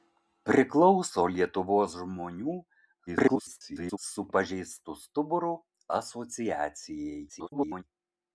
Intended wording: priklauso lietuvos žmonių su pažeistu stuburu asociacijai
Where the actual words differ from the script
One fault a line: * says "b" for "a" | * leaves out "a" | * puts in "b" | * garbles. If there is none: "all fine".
* garbles
* garbles